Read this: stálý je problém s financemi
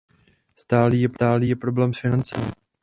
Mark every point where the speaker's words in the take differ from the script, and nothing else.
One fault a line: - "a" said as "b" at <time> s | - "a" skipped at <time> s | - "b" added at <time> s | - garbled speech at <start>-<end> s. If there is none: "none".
none